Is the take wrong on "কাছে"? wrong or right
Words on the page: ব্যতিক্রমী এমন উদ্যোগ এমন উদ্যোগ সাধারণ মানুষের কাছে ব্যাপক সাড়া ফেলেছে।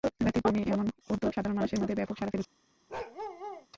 wrong